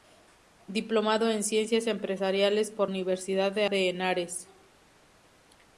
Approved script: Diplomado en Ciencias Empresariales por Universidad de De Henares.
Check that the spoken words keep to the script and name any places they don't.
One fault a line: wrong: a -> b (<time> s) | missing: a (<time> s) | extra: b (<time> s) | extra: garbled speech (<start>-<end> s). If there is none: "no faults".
no faults